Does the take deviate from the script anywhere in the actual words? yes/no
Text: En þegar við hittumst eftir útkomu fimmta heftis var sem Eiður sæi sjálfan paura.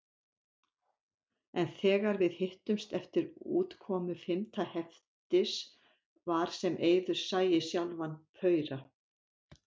no